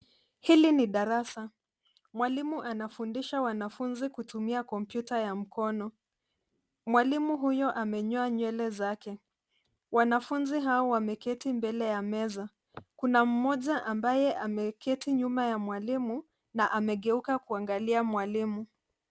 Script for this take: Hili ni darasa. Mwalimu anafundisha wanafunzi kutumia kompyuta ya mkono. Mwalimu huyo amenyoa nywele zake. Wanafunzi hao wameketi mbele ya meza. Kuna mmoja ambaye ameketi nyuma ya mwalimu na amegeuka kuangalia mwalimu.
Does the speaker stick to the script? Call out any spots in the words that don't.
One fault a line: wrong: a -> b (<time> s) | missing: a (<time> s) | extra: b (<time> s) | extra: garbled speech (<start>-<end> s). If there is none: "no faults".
no faults